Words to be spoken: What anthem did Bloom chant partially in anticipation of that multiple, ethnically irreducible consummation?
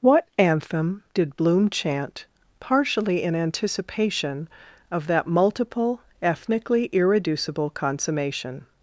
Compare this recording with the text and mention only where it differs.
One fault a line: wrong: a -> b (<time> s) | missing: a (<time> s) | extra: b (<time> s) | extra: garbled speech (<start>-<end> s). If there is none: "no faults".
no faults